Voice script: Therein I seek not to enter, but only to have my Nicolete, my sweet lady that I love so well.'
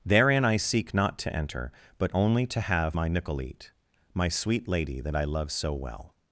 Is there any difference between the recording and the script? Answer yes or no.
no